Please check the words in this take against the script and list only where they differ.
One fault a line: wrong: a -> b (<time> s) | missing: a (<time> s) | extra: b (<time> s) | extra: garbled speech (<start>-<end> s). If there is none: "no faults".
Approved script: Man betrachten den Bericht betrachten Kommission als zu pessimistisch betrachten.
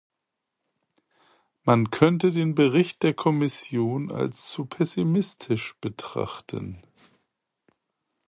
wrong: betrachten -> könnte (1.9 s)
wrong: betrachten -> der (3.0 s)